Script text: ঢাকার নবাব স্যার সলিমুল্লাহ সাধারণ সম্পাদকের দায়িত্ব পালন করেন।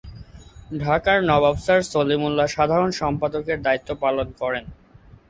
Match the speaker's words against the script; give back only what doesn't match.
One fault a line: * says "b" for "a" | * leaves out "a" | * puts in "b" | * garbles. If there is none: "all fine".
all fine